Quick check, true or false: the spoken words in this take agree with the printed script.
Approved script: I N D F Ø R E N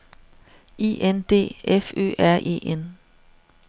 true